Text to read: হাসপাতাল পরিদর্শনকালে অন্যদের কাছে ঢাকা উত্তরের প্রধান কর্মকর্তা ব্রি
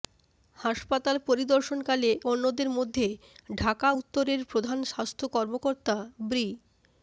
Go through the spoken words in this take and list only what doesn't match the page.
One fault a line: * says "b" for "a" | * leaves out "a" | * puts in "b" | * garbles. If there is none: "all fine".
* says "মধ্যে" for "কাছে"
* puts in "স্বাস্থ্য"